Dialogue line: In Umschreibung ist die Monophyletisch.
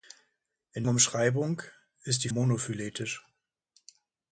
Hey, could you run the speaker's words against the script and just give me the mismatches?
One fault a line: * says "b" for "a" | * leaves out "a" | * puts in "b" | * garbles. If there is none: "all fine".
all fine